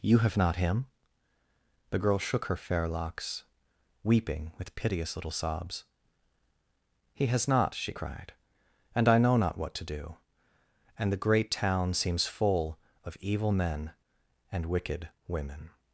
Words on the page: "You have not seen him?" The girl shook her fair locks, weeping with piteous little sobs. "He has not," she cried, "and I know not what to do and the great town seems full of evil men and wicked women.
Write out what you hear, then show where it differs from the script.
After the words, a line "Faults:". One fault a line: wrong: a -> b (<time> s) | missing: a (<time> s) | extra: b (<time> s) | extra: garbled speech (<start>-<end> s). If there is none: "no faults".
"You have not him?" The girl shook her fair locks, weeping with piteous little sobs. "He has not," she cried, "and I know not what to do and the great town seems full of evil men and wicked women.
Faults:
missing: seen (0.6 s)